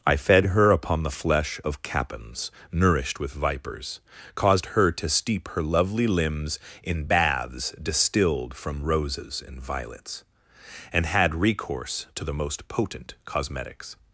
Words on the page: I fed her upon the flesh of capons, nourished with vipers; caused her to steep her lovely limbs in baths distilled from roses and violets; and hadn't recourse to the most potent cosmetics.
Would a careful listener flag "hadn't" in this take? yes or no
yes